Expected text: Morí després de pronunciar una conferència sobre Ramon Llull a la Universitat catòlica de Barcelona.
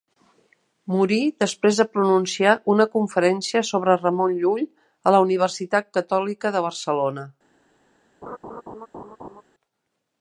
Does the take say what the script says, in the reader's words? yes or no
yes